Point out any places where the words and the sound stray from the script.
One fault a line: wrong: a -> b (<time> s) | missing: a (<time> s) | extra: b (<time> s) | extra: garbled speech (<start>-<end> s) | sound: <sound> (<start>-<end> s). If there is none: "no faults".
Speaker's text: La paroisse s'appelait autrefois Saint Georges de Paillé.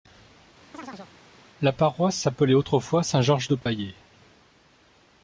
sound: chirp (0.7-1.1 s)
sound: dropout (3.6-3.7 s)